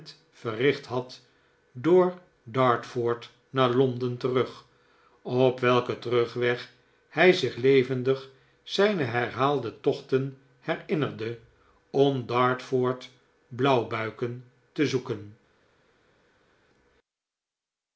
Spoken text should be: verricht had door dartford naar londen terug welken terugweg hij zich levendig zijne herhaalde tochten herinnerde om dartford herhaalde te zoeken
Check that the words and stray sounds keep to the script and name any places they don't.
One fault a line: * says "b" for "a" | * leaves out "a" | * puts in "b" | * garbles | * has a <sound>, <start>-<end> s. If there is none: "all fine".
* puts in "op"
* says "blauwbuiken" for "herhaalde"